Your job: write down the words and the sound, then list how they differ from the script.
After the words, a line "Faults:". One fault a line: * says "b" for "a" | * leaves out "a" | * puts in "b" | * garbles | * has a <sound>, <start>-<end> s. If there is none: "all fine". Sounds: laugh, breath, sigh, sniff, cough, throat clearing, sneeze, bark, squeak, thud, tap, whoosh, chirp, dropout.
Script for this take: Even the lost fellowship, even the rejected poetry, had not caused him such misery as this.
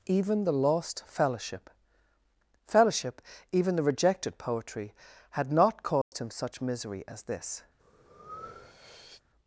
Even the lost fellowship fellowship, even the rejected poetry, had not caused him such misery as this.
Faults:
* puts in "fellowship"
* has a dropout, 6.0-6.1 s
* has a breath, 7.8-9.2 s